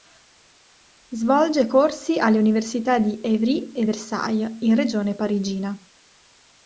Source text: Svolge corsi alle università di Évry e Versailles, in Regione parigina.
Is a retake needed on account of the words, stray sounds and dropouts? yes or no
no